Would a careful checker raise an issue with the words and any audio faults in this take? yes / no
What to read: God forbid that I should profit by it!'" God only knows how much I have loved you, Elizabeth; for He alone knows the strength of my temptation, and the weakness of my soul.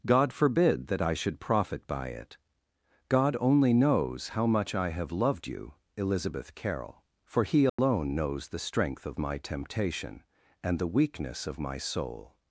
yes